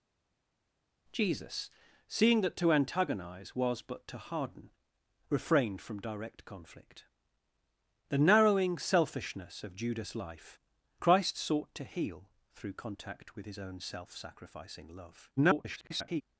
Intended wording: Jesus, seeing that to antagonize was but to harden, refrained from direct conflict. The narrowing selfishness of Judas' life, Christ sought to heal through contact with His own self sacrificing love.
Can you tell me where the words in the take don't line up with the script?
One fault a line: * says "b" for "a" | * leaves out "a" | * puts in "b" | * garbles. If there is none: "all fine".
* garbles